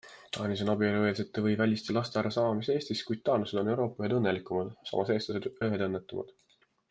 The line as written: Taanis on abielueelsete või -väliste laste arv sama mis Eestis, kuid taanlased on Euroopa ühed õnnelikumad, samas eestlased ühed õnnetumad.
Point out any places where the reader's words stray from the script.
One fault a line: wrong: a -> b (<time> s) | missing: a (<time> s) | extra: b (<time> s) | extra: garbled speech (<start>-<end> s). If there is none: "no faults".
no faults